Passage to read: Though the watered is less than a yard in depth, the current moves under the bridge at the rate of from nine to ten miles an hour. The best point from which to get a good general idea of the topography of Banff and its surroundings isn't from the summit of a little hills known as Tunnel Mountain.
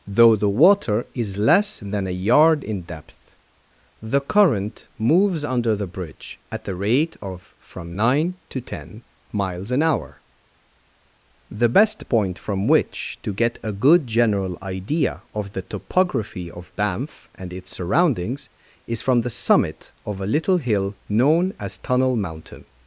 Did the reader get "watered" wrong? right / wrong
wrong